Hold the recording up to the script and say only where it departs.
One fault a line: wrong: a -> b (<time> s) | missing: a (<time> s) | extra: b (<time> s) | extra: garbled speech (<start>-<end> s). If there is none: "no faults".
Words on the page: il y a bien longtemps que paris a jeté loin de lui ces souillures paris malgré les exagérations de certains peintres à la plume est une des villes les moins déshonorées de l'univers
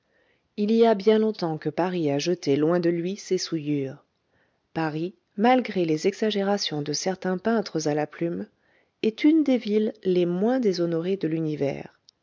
no faults